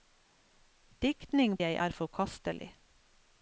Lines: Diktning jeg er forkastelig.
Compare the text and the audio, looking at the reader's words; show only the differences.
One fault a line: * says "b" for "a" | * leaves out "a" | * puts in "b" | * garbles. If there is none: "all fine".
all fine